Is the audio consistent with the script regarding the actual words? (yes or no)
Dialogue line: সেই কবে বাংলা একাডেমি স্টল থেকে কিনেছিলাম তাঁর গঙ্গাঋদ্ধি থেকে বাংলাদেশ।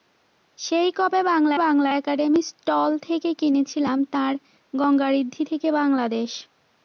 no